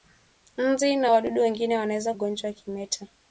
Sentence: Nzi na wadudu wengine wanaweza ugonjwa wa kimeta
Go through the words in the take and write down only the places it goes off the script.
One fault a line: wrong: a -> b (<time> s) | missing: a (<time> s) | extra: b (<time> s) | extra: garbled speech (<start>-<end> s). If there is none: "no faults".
no faults